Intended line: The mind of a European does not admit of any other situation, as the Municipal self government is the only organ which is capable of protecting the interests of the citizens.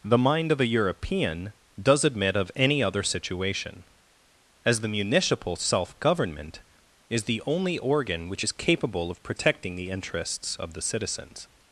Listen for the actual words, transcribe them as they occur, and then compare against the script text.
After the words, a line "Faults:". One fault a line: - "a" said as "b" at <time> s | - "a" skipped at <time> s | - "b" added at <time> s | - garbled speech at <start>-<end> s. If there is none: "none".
The mind of a European does admit of any other situation, as the Municipal self government is the only organ which is capable of protecting the interests of the citizens.
Faults:
- "not" skipped at 2.0 s